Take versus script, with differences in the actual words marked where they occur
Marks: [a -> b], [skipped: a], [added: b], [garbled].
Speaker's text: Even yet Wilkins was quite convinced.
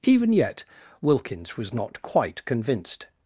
Even yet Wilkins was [added: not] quite convinced.